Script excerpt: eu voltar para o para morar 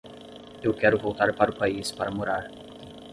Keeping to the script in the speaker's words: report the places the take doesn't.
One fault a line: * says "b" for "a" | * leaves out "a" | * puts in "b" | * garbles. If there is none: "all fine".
* puts in "quero"
* puts in "país"